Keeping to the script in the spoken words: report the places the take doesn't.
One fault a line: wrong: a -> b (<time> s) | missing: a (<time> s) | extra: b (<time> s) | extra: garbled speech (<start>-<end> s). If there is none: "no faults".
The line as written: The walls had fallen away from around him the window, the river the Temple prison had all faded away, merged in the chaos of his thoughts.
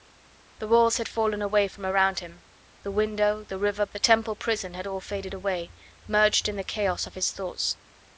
no faults